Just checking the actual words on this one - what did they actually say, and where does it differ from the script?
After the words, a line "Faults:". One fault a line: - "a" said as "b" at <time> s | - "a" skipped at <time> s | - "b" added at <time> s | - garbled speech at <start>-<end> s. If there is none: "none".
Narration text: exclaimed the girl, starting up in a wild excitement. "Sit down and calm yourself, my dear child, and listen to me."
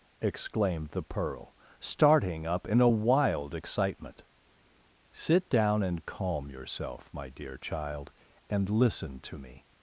exclaimed the pearl, starting up in a wild excitement. "Sit down and calm yourself, my dear child, and listen to me."
Faults:
- "girl" said as "pearl" at 1.0 s